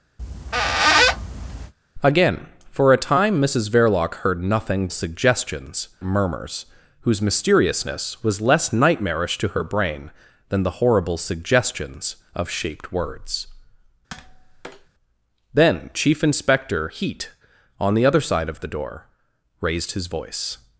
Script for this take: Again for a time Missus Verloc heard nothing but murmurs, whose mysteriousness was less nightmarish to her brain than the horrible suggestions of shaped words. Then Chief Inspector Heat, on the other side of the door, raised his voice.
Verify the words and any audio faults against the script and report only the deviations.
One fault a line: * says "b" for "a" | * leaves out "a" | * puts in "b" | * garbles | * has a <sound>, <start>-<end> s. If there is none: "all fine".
* has a squeak, 0.2-1.7 s
* says "suggestions" for "but"
* has a tap, 14.1-14.9 s